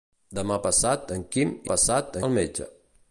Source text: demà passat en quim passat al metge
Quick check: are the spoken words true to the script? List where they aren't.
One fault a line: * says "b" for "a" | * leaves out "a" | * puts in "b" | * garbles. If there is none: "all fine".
all fine